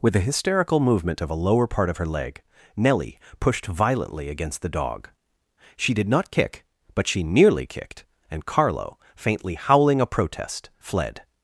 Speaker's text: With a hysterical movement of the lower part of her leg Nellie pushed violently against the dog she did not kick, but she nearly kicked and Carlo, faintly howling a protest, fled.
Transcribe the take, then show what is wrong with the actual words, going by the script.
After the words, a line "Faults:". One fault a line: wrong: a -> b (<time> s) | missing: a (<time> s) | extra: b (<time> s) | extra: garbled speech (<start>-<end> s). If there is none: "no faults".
With a hysterical movement of a lower part of her leg Nellie pushed violently against the dog she did not kick, but she nearly kicked and Carlo, faintly howling a protest, fled.
Faults:
wrong: the -> a (1.3 s)